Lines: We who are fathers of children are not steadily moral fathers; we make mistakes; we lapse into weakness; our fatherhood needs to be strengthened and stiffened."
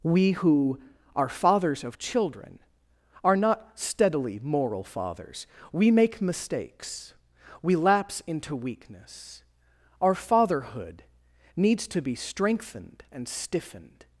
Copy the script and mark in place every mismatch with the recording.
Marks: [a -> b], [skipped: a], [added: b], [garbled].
We who are fathers of children are not steadily moral fathers; we make mistakes; we lapse into weakness; our fatherhood needs to be strengthened and stiffened."